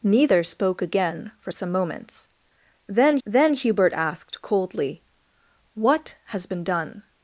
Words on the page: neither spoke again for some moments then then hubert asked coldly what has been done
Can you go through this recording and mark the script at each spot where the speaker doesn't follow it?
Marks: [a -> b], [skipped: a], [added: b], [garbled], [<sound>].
neither spoke again for some moments then then hubert asked coldly what has been done